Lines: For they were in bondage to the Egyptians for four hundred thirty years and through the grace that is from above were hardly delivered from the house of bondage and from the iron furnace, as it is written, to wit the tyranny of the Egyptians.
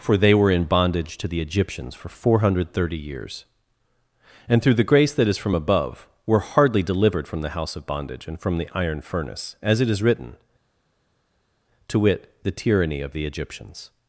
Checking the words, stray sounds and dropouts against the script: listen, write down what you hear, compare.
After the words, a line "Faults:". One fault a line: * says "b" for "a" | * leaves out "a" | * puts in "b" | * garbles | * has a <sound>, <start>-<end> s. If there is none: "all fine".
For they were in bondage to the Egyptians for four hundred thirty years and through the grace that is from above were hardly delivered from the house of bondage and from the iron furnace, as it is written, to wit the tyranny of the Egyptians.
Faults:
all fine